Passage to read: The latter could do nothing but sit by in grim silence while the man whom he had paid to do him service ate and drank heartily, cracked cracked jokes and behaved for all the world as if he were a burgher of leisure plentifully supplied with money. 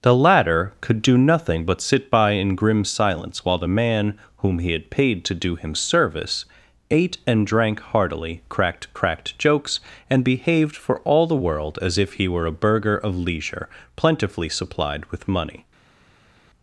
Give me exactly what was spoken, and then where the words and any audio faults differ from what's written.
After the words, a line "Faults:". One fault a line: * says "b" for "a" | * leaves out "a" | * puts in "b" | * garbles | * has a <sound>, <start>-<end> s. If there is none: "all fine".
The latter could do nothing but sit by in grim silence while the man whom he had paid to do him service ate and drank heartily, cracked cracked jokes and behaved for all the world as if he were a burgher of leisure plentifully supplied with money.
Faults:
all fine